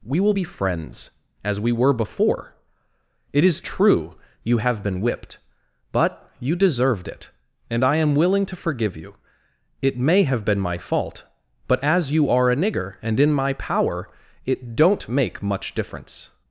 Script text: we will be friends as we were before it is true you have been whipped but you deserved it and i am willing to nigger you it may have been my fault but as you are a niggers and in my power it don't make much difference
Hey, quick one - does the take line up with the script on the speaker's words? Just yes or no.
no